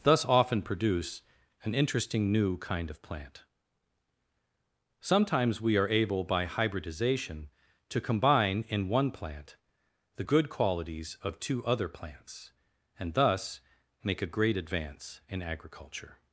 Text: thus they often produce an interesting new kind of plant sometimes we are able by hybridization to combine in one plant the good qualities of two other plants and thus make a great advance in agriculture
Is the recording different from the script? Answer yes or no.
yes